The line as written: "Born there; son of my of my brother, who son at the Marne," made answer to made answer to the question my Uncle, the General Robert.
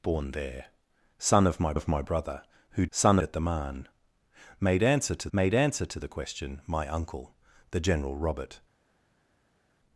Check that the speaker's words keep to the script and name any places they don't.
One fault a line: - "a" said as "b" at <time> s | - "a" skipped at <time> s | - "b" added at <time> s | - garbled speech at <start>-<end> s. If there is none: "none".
none